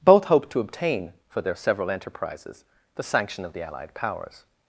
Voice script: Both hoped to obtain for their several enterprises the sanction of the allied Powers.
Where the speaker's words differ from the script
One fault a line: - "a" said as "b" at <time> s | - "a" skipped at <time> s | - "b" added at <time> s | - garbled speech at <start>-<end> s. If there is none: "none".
none